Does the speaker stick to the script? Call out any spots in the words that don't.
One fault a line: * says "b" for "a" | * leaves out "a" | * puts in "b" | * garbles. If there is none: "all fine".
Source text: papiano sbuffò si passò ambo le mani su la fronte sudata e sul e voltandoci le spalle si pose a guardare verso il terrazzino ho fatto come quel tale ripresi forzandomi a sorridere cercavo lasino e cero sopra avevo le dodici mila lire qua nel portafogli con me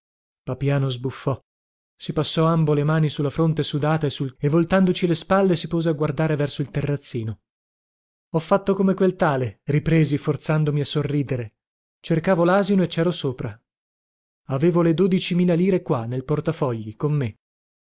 all fine